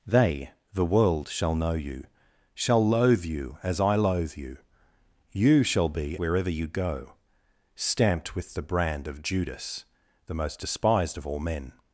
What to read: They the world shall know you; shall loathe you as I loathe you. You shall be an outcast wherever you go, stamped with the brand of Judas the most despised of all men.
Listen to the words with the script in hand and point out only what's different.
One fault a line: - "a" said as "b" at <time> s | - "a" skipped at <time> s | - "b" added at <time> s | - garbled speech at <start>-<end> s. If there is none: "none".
- "an outcast" skipped at 6.2 s